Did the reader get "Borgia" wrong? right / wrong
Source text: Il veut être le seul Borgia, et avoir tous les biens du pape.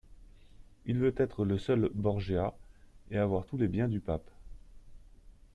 right